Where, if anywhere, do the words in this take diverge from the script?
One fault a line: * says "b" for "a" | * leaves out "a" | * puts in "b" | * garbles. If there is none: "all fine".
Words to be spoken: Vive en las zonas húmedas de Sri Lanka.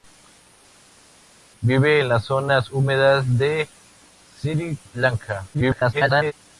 * garbles